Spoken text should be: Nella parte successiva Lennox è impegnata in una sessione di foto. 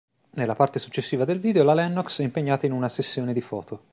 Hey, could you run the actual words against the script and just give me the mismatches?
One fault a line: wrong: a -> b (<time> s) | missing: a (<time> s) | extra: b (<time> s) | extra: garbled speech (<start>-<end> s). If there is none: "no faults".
extra: del video la (1.2 s)